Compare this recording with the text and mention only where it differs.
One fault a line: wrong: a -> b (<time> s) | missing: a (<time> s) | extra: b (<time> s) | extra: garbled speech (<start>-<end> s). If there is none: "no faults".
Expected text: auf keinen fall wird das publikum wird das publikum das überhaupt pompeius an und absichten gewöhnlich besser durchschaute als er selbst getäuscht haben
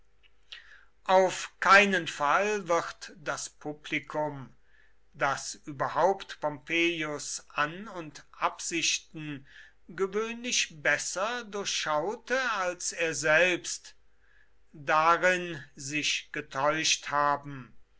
missing: wird (4.5 s)
missing: publikum das (5.5 s)
extra: darin sich (14.7 s)